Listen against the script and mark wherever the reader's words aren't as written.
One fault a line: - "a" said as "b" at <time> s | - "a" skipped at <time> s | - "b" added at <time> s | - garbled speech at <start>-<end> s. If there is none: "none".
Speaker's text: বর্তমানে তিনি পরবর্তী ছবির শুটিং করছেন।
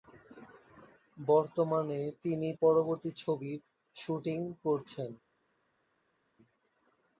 none